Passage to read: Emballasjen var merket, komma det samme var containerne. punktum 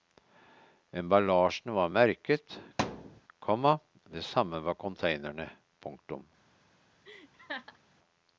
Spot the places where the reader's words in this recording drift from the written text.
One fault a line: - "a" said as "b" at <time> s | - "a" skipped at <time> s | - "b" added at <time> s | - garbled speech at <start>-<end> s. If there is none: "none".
none